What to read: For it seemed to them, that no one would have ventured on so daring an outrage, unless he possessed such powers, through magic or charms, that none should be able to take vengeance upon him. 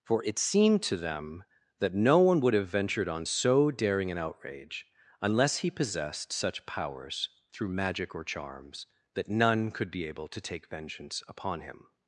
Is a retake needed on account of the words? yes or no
yes